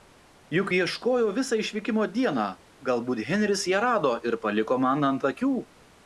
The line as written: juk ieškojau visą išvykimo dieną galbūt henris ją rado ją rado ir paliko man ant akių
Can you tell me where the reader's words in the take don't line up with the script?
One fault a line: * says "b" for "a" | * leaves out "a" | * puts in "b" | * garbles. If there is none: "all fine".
* leaves out "ją rado"